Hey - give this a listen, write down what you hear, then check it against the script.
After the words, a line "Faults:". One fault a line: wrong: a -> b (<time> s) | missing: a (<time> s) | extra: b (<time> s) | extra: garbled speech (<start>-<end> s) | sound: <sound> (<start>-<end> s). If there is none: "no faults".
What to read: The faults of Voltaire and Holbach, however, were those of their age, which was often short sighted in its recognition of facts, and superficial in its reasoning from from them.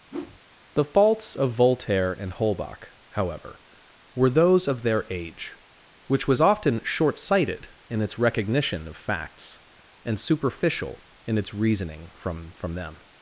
The faults of Voltaire and Holbach, however, were those of their age, which was often short sighted in its recognition of facts, and superficial in its reasoning from from them.
Faults:
sound: whoosh (0.1-0.4 s)